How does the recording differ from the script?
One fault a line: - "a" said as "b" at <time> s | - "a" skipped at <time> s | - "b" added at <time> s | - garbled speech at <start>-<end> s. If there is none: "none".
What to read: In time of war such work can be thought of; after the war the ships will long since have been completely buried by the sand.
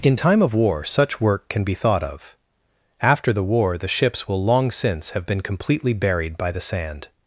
none